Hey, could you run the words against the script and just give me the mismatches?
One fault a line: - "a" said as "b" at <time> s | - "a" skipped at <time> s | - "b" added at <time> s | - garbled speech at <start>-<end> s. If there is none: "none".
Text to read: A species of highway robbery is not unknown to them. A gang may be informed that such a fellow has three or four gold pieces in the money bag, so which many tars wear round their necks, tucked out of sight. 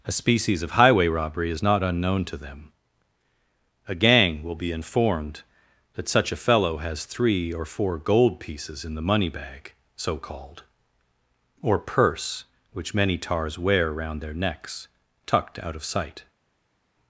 - "may" said as "will" at 4.4 s
- "called or purse" added at 10.2 s